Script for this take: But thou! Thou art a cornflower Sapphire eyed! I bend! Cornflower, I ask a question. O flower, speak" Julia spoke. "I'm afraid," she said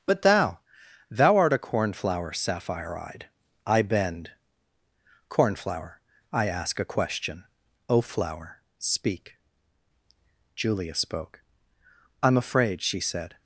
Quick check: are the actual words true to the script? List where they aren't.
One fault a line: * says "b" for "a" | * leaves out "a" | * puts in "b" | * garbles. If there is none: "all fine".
all fine